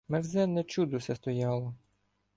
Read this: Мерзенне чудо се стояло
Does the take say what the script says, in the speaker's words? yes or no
yes